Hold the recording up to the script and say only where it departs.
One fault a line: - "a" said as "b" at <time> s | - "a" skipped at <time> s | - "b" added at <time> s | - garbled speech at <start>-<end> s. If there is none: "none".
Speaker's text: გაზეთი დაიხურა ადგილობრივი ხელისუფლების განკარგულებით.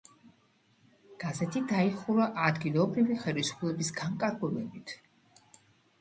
none